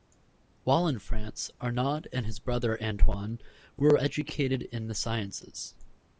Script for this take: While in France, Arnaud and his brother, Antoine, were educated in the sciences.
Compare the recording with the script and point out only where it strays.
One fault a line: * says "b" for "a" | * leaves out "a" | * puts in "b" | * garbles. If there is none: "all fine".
all fine